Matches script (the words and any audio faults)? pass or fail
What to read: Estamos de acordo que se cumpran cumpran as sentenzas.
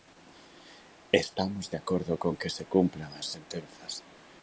fail